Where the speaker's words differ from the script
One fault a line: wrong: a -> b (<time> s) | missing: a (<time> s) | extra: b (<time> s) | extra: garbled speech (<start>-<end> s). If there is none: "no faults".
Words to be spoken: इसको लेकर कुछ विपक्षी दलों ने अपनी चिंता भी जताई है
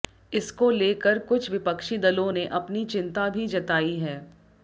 no faults